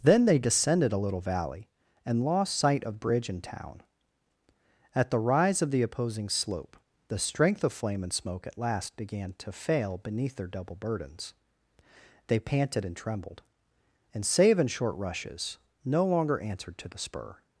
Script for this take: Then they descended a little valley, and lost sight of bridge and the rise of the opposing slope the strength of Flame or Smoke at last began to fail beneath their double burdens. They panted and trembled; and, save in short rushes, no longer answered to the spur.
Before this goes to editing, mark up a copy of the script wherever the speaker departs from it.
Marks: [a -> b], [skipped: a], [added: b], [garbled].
Then they descended a little valley, and lost sight of bridge and [added: town At] the rise of the opposing slope the strength of Flame [or -> and] Smoke at last began to fail beneath their double burdens. They panted and trembled; and, save in short rushes, no longer answered to the spur.